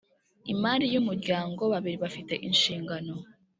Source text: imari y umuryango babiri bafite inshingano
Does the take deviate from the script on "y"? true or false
false